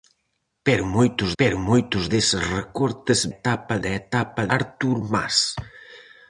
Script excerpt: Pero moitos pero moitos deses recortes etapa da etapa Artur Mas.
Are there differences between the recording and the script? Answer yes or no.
no